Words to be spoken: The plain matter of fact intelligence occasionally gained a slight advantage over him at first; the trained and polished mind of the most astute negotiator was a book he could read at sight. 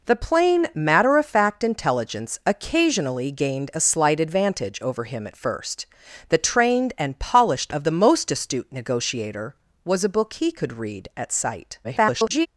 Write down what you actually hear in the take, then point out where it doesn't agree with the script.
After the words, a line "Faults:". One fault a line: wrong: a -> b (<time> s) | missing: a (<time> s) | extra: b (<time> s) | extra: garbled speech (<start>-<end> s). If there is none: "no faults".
The plain matter of fact intelligence occasionally gained a slight advantage over him at first; the trained and polished of the most astute negotiator was a book he could read at sight. [garbled]
Faults:
missing: mind (7.8 s)
extra: garbled speech (11.8-12.5 s)